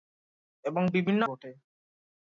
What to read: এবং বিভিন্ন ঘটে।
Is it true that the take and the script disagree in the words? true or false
false